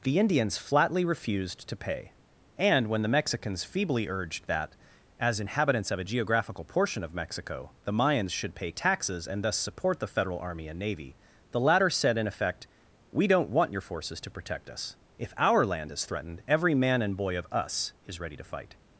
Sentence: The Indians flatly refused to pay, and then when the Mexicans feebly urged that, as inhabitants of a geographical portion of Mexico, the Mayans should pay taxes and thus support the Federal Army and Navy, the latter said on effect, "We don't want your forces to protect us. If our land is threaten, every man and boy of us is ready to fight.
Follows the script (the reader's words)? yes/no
no